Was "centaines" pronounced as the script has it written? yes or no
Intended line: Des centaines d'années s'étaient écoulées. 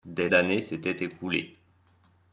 no